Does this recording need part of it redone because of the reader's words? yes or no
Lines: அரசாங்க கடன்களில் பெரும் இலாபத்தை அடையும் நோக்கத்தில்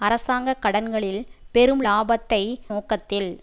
yes